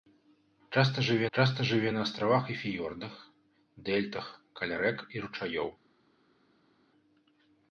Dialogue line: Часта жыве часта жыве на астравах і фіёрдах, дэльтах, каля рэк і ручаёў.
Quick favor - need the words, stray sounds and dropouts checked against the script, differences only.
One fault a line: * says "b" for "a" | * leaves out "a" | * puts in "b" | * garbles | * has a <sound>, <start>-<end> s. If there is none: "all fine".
all fine